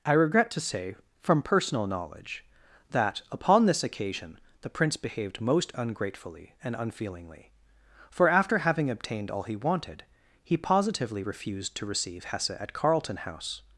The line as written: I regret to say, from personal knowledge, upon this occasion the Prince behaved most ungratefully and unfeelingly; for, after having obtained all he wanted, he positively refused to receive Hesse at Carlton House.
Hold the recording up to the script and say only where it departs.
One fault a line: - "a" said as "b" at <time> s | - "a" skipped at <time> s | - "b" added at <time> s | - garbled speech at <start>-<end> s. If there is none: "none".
- "that" added at 2.9 s